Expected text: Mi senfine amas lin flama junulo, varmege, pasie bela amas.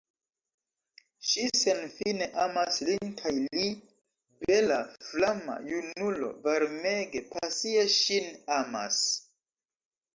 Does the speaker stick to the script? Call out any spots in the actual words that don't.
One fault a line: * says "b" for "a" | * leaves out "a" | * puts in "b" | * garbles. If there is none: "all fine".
* says "Ŝi" for "Mi"
* puts in "kaj li bela"
* says "ŝin" for "bela"